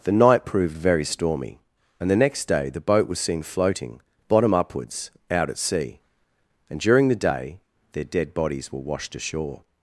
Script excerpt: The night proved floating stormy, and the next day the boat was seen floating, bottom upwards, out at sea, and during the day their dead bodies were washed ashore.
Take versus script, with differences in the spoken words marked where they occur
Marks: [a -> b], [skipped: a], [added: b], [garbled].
The night proved [floating -> very] stormy, and the next day the boat was seen floating, bottom upwards, out at sea, and during the day their dead bodies were washed ashore.